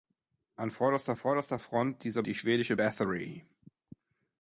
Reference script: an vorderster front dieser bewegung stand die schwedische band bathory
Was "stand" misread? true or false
true